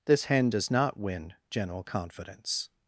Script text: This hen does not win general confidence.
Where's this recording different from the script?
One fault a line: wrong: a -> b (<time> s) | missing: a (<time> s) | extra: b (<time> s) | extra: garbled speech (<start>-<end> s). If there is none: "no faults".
no faults